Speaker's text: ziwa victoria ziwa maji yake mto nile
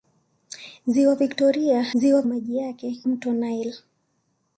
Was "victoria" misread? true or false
false